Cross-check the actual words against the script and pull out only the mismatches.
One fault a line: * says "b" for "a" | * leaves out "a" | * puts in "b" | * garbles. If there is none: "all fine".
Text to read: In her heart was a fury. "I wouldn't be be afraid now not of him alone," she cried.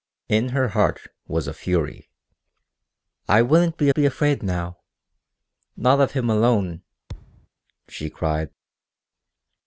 all fine